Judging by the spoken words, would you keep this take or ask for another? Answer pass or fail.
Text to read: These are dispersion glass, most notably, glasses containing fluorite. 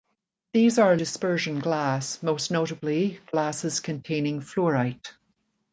pass